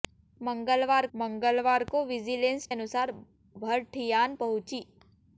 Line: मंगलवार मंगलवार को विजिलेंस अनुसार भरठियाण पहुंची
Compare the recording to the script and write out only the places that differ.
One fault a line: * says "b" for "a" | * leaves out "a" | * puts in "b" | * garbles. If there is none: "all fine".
all fine